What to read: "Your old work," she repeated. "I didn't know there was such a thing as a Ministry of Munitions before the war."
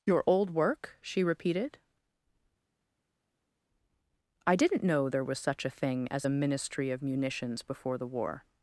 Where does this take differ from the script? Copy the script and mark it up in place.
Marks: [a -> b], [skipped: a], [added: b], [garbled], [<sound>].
"Your old work," she repeated. "I didn't know there was such a thing as a Ministry of Munitions before the war."